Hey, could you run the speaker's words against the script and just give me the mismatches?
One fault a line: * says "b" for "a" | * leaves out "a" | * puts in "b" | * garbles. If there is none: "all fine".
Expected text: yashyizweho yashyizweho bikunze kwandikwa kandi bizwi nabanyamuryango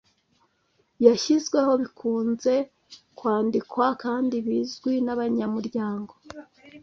* leaves out "yashyizweho"